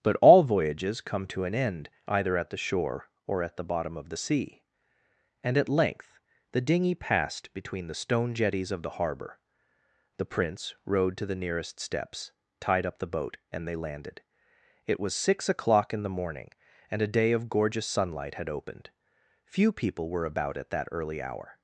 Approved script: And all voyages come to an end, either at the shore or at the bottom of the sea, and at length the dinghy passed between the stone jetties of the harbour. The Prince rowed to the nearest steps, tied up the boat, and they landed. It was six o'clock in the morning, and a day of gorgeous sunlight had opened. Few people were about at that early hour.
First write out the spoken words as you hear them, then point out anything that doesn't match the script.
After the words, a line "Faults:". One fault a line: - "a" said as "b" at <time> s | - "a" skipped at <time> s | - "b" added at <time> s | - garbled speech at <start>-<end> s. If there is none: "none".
But all voyages come to an end, either at the shore or at the bottom of the sea, and at length the dinghy passed between the stone jetties of the harbour. The Prince rowed to the nearest steps, tied up the boat, and they landed. It was six o'clock in the morning, and a day of gorgeous sunlight had opened. Few people were about at that early hour.
Faults:
- "And" said as "But" at 0.0 s